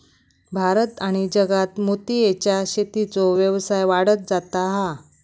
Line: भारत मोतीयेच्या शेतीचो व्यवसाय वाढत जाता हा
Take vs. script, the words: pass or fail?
fail